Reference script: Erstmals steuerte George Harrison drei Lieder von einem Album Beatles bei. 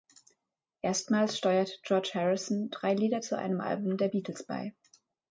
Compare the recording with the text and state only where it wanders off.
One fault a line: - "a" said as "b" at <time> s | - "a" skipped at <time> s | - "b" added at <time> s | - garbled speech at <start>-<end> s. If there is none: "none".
- "von" said as "zu" at 3.2 s
- "der" added at 4.0 s